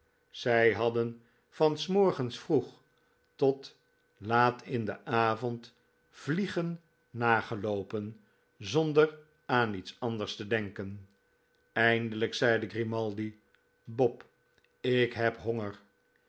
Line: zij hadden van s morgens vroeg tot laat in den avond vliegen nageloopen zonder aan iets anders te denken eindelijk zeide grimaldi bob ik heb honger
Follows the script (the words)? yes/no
yes